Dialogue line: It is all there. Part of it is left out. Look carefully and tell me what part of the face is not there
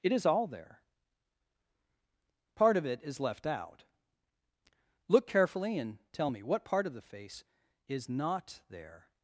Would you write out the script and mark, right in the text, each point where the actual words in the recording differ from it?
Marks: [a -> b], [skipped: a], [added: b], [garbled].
It is all there. Part of it is left out. Look carefully and tell me what part of the face is not there